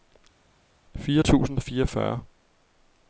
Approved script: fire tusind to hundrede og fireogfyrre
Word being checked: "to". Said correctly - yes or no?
no